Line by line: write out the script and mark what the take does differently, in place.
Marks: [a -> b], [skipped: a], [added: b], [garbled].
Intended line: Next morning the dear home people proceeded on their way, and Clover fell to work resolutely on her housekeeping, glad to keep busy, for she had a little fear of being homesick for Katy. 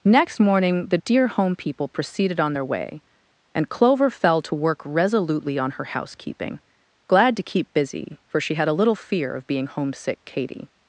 Next morning the dear home people proceeded on their way, and Clover fell to work resolutely on her housekeeping, glad to keep busy, for she had a little fear of being homesick [skipped: for] Katy.